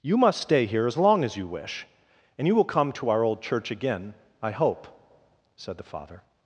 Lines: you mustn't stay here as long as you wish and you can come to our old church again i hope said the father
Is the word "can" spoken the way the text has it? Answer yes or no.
no